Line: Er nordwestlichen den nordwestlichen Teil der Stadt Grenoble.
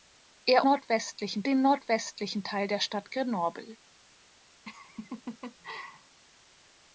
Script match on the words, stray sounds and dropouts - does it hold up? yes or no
no